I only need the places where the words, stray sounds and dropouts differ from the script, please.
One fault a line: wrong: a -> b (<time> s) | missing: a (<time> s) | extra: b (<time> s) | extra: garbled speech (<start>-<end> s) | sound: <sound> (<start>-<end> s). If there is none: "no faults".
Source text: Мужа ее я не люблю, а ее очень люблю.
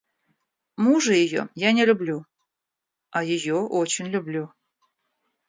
no faults